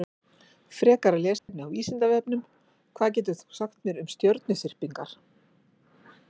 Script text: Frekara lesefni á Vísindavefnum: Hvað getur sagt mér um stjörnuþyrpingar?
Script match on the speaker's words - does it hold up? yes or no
no